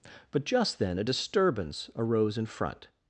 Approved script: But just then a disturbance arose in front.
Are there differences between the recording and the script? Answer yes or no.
no